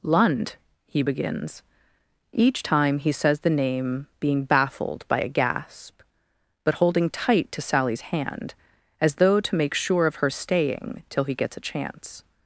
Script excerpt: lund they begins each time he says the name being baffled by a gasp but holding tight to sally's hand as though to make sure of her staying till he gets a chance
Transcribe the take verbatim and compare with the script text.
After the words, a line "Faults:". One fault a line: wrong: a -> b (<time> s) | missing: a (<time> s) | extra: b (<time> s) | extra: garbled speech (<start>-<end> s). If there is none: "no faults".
lund he begins each time he says the name being baffled by a gasp but holding tight to sally's hand as though to make sure of her staying till he gets a chance
Faults:
wrong: they -> he (0.9 s)